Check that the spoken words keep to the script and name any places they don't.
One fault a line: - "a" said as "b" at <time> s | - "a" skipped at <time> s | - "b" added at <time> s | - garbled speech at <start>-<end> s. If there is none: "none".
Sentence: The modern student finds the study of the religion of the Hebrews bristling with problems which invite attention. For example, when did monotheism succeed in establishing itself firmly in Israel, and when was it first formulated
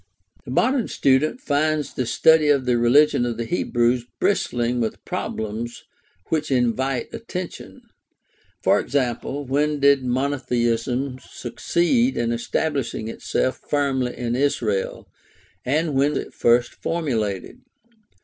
- "was" skipped at 16.2 s